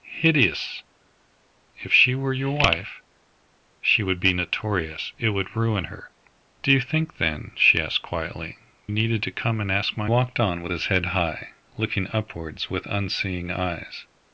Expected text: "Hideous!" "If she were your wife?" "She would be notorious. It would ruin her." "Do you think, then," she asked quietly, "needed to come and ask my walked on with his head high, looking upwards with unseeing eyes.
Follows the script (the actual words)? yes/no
yes